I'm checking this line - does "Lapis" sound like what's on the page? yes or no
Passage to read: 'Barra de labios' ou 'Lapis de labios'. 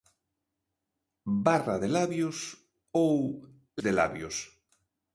no